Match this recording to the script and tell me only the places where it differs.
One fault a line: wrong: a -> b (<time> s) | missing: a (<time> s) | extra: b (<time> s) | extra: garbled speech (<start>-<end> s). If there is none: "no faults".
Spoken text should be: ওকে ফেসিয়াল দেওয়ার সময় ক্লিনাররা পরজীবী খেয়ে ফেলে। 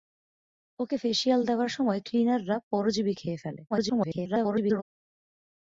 extra: garbled speech (3.7-4.8 s)